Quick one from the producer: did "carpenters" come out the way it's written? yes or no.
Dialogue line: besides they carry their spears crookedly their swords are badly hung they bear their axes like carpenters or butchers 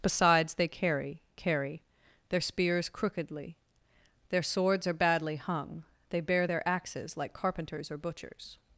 yes